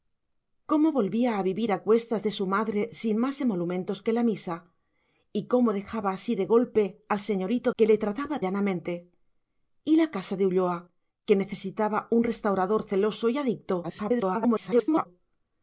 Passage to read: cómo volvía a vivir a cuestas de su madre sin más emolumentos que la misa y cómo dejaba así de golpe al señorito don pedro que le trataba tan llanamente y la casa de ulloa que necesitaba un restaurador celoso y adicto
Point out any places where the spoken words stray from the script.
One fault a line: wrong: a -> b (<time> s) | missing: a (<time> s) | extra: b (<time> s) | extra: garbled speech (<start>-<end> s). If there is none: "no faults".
missing: don pedro (7.7 s)
missing: tan (8.4 s)
extra: garbled speech (13.8-15.1 s)